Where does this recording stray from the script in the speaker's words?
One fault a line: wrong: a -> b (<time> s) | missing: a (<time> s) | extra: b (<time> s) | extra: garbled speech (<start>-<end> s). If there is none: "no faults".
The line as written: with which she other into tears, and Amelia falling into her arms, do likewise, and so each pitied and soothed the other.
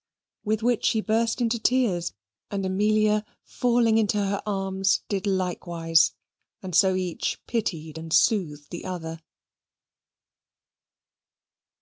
wrong: other -> burst (1.0 s)
wrong: do -> did (5.1 s)